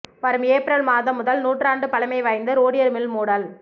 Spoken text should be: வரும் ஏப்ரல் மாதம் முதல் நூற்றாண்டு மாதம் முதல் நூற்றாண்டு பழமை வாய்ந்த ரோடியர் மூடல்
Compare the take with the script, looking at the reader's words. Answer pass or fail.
fail